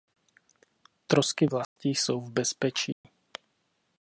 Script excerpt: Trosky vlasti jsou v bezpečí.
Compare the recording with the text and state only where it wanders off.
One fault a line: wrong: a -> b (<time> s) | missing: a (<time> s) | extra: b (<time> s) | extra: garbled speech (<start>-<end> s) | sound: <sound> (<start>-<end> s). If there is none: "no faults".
sound: dropout (1.6-1.8 s)
sound: dropout (2.9-3.0 s)